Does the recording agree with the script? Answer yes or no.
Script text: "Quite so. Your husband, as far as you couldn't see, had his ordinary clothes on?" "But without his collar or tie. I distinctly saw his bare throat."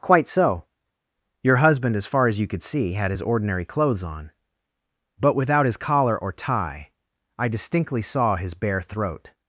no